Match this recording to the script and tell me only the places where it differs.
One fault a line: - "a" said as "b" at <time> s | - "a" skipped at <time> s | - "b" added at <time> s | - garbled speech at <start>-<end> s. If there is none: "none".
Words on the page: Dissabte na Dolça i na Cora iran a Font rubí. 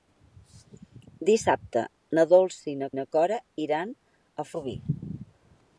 - "na" added at 3.0 s
- "Font" skipped at 4.5 s